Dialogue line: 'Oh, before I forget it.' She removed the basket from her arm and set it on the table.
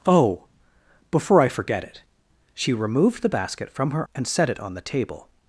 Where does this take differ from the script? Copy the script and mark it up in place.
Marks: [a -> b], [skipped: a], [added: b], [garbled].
'Oh, before I forget it.' She removed the basket from her [skipped: arm] and set it on the table.